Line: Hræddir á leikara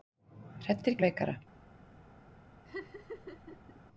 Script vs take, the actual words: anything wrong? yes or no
no